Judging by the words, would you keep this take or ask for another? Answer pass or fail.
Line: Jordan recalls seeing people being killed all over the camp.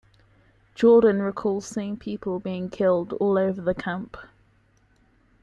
pass